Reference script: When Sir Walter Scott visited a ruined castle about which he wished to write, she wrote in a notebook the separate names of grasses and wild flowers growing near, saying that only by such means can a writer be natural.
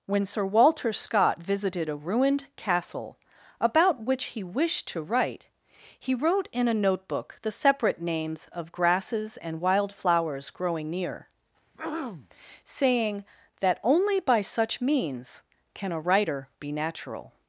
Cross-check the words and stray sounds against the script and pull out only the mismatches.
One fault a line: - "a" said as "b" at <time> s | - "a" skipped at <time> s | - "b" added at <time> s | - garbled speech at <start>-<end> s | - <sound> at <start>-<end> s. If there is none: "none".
- "she" said as "he" at 6.0 s
- throat clearing at 11.7-12.3 s